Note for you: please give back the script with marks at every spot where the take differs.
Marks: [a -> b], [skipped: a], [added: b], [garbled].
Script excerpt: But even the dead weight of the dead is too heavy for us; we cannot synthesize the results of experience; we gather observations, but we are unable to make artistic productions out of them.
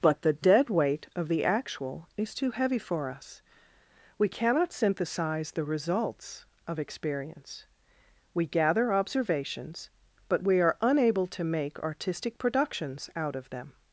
But [skipped: even] the dead weight of the [dead -> actual] is too heavy for us; we cannot synthesize the results of experience; we gather observations, but we are unable to make artistic productions out of them.